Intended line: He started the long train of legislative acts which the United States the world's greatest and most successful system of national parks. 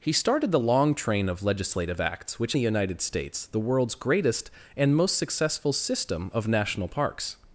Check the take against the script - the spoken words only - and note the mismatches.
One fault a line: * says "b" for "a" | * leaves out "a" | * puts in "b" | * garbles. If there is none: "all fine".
all fine